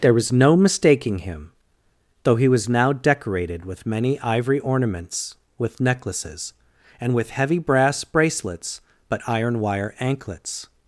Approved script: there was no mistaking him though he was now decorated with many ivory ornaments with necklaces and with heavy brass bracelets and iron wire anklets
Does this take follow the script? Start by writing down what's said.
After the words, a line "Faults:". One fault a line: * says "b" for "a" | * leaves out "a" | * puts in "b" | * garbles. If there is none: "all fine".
there was no mistaking him though he was now decorated with many ivory ornaments with necklaces and with heavy brass bracelets but iron wire anklets
Faults:
* says "but" for "and"